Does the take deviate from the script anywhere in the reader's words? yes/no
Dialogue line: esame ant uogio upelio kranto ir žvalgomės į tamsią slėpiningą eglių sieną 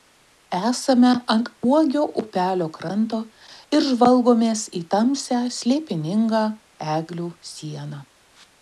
no